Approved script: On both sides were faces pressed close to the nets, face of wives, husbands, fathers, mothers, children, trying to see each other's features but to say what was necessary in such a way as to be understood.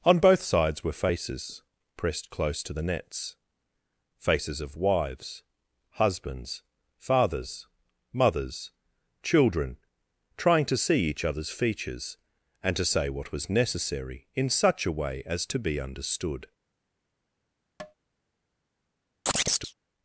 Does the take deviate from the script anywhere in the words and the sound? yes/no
yes